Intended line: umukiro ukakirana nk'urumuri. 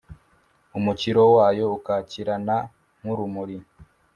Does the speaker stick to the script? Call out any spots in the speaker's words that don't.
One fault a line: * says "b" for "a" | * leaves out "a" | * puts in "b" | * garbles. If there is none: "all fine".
* puts in "wayo"